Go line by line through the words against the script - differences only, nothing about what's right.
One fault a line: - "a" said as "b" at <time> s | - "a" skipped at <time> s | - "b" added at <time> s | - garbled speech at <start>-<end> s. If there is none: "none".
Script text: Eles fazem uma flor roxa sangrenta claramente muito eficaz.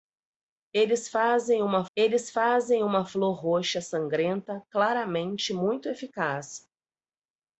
- "eles fazem uma" added at 2.0 s